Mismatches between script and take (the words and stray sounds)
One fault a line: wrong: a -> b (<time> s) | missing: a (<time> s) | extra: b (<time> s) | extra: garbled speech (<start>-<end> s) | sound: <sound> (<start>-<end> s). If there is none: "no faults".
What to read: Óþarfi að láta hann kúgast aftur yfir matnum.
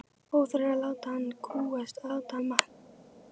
wrong: aftur -> láta (2.1 s)